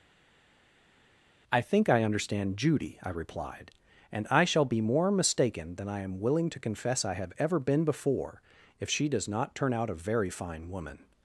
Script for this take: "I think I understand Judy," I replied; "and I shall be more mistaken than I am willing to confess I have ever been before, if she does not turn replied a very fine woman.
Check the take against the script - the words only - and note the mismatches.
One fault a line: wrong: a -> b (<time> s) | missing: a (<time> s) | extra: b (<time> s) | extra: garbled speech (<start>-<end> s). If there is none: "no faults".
wrong: replied -> out (9.7 s)